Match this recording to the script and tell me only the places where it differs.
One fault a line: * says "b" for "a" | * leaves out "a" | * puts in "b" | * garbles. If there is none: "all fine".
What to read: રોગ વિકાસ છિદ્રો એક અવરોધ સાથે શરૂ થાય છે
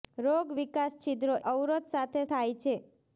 * leaves out "એક"
* leaves out "શરૂ"